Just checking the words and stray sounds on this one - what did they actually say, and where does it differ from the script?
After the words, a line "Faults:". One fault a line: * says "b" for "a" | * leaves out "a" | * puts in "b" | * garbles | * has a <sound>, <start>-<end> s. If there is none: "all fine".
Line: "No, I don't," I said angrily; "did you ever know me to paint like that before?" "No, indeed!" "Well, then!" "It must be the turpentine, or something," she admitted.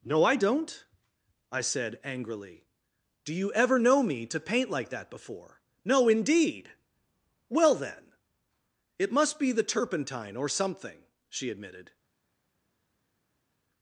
"No, I don't," I said angrily; "do you ever know me to paint like that before?" "No, indeed!" "Well, then!" "It must be the turpentine, or something," she admitted.
Faults:
* says "do" for "did"